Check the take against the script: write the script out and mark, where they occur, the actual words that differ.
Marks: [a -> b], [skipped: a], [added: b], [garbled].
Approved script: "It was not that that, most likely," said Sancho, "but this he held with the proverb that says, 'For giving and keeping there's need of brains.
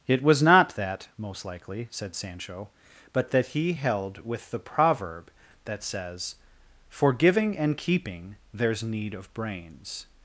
"It was not that [skipped: that,] most likely," said Sancho, "but [this -> that] he held with the proverb that says, 'For giving and keeping there's need of brains.